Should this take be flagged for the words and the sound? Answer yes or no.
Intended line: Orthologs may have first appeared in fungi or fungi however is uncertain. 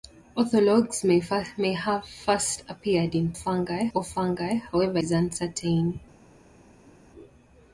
no